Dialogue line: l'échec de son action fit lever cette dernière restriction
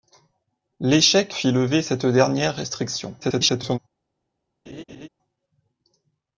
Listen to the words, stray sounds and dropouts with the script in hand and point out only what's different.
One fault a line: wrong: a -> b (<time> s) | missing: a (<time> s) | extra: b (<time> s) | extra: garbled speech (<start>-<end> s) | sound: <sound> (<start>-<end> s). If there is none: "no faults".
missing: de son action (1.4 s)
extra: garbled speech (3.2-3.8 s)
sound: laugh (4.7-5.1 s)